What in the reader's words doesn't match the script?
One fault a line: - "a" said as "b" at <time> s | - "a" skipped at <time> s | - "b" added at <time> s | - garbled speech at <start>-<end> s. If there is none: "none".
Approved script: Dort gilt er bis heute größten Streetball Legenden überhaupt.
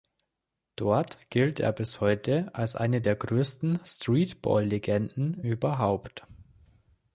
- "als eine der" added at 2.5 s